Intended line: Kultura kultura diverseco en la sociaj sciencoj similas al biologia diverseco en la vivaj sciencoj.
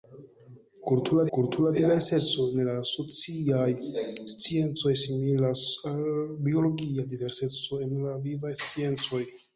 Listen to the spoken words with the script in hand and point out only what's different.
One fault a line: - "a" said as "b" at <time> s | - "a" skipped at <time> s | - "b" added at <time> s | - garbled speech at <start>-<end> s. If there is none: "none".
none